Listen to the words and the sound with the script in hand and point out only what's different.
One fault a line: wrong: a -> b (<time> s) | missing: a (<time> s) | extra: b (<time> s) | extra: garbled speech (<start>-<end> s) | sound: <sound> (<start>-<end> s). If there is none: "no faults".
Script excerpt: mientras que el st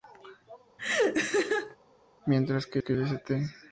sound: laugh (0.8-1.8 s)
extra: que (2.8 s)